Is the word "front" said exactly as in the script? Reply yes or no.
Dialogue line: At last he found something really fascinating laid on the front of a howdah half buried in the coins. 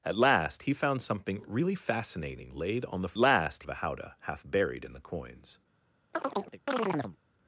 no